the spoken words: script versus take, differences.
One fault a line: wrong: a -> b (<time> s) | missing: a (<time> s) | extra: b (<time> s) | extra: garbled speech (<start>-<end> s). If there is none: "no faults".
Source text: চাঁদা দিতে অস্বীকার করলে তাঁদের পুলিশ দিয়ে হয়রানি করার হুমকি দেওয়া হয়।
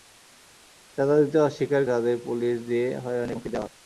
missing: করলে (1.8 s)
missing: করার (3.3 s)